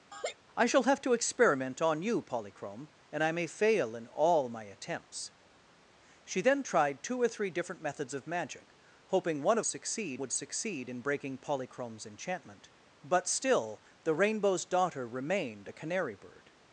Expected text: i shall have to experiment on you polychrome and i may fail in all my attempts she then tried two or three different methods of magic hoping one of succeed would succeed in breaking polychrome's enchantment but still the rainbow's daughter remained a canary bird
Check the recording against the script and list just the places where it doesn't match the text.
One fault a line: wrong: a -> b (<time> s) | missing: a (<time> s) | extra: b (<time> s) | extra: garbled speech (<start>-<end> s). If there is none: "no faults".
no faults